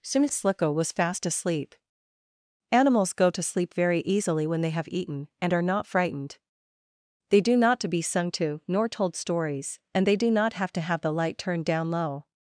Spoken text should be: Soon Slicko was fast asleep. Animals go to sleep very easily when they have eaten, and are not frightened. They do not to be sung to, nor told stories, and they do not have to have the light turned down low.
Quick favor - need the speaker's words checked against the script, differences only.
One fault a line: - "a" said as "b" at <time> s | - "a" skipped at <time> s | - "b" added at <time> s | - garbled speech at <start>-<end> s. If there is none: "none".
none